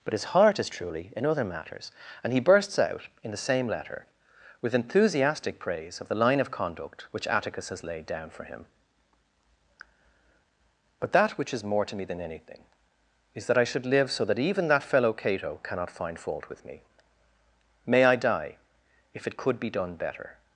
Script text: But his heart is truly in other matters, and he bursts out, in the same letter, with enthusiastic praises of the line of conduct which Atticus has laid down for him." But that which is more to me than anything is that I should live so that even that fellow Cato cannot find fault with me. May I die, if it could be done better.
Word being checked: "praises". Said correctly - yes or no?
no